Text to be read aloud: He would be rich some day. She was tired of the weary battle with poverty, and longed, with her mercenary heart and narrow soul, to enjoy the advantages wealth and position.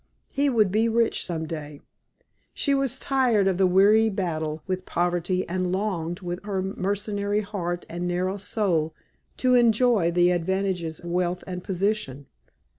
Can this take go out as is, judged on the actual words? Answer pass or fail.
pass